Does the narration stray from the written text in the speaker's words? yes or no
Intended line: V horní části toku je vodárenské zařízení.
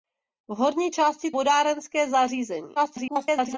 yes